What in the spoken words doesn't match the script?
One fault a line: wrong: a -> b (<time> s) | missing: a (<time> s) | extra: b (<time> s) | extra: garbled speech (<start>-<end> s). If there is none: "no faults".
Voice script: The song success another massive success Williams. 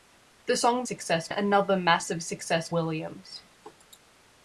no faults